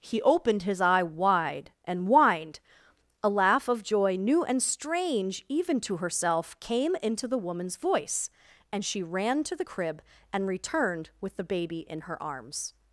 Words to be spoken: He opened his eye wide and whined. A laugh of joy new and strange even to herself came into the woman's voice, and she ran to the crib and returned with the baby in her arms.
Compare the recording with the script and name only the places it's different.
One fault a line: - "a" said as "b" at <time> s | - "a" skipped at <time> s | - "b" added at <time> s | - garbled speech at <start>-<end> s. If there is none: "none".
none